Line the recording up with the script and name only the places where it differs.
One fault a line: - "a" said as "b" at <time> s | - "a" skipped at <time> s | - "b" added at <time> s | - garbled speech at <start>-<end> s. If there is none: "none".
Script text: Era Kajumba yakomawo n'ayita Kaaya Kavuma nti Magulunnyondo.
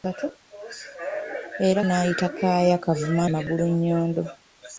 - "Kajumba yakomawo" skipped at 1.8 s
- "nti" skipped at 3.2 s